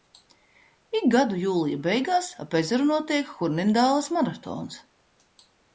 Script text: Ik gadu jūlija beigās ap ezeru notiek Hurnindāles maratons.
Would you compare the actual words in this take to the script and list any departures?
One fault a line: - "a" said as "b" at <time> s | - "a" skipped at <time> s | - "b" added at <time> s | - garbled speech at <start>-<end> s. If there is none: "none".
none